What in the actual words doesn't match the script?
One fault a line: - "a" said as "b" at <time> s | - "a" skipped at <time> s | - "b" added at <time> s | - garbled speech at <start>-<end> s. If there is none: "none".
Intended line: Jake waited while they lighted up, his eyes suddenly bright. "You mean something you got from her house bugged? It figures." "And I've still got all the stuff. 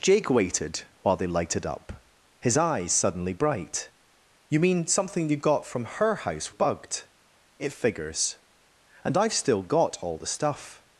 none